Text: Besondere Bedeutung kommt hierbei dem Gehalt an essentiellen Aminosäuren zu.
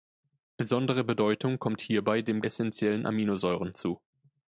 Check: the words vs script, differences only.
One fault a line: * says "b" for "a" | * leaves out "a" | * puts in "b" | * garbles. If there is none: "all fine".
* leaves out "Gehalt an"